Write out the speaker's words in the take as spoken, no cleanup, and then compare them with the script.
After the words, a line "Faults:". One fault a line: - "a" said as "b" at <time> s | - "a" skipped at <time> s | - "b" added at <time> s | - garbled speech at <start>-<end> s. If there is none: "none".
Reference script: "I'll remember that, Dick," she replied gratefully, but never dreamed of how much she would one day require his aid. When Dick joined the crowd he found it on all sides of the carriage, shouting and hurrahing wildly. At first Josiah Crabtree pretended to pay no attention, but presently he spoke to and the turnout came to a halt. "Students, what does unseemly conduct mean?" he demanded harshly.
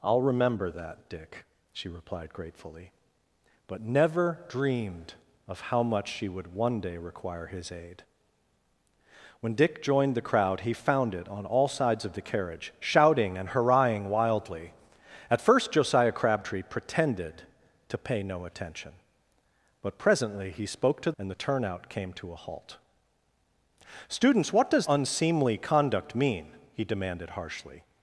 "I'll remember that, Dick," she replied gratefully, but never dreamed of how much she would one day require his aid. When Dick joined the crowd he found it on all sides of the carriage, shouting and hurrahing wildly. At first Josiah Crabtree pretended to pay no attention, but presently he spoke to and the turnout came to a halt. "Students, what does unseemly conduct mean?" he demanded harshly.
Faults:
none